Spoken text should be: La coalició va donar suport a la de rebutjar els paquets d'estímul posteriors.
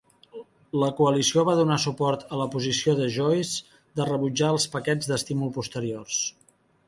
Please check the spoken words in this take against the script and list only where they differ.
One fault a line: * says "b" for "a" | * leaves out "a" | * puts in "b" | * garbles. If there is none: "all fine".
* puts in "posició de Joyce"